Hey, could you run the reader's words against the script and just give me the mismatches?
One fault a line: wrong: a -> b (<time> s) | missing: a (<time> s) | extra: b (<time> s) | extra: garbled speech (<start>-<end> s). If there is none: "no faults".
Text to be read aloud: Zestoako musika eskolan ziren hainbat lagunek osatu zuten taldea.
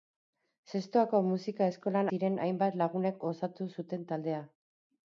no faults